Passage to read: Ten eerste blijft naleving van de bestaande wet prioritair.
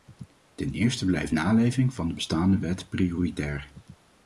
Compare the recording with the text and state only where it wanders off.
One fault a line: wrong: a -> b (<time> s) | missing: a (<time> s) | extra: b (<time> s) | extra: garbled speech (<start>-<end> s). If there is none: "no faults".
no faults